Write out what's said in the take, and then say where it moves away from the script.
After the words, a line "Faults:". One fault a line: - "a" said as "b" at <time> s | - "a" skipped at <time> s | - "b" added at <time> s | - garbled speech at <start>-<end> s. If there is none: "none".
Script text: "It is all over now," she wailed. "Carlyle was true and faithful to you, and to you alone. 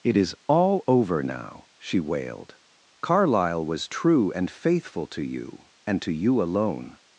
"It is all over now," she wailed. "Carlyle was true and faithful to you, and to you alone.
Faults:
none